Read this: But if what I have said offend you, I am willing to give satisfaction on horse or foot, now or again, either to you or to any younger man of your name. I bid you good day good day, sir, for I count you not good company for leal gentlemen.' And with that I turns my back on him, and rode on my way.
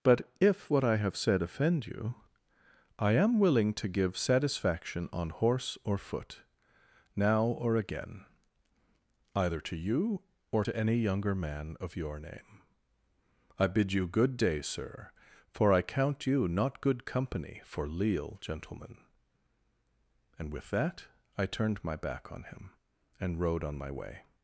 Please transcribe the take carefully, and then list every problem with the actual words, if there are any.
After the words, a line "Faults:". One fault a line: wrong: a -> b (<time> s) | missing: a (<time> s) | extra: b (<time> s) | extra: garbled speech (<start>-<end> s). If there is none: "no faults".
But if what I have said offend you, I am willing to give satisfaction on horse or foot, now or again, either to you or to any younger man of your name. I bid you good day, sir, for I count you not good company for leal gentlemen.' And with that I turned my back on him, and rode on my way.
Faults:
missing: good day (14.6 s)
wrong: turns -> turned (21.4 s)